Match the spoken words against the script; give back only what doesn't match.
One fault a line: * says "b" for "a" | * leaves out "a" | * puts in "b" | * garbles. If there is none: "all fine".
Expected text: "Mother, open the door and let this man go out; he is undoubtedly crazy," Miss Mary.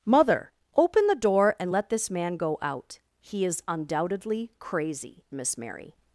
all fine